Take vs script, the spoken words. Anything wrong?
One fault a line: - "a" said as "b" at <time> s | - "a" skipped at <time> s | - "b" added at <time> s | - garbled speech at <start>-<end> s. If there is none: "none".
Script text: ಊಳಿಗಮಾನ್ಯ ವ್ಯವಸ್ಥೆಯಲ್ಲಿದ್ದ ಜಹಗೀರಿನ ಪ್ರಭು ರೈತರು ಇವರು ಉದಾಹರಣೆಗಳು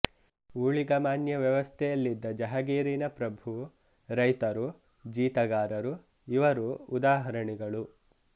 - "ಜೀತಗಾರರು" added at 5.0 s